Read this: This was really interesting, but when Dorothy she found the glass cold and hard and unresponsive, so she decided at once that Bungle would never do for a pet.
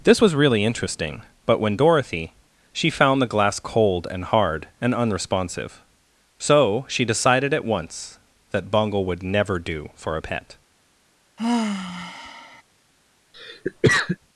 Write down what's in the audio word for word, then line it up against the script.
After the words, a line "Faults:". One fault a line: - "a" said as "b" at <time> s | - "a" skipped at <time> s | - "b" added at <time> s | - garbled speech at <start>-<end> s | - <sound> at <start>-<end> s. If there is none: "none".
This was really interesting, but when Dorothy she found the glass cold and hard and unresponsive, so she decided at once that Bungle would never do for a pet.
Faults:
- sigh at 11.4-12.6 s
- cough at 13.3-14.2 s